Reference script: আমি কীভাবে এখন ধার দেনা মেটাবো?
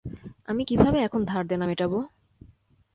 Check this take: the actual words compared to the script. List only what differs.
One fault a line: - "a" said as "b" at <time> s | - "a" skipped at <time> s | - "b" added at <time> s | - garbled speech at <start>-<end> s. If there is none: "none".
none